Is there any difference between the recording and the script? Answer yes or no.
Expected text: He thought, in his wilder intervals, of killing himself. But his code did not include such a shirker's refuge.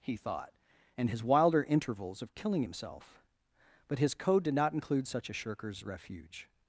yes